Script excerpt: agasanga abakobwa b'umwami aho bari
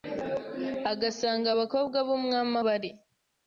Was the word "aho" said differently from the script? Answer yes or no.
yes